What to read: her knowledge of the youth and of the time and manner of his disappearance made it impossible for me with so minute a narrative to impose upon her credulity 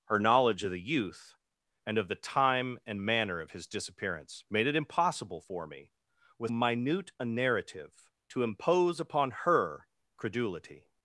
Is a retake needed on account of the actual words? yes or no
yes